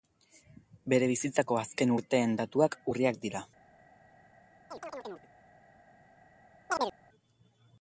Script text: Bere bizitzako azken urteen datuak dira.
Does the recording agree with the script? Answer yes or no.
no